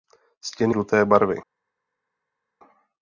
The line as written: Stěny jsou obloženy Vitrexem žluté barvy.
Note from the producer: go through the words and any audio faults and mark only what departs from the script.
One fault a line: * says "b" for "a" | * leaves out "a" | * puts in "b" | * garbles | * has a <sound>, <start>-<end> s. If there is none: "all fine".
* leaves out "jsou obloženy Vitrexem"